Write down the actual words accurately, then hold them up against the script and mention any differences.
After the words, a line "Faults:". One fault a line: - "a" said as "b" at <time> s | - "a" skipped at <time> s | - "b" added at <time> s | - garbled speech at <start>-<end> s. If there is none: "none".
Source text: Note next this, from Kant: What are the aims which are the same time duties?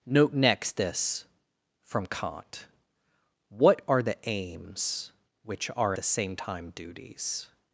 Note next this, from Kant: What are the aims which are the same time duties?
Faults:
none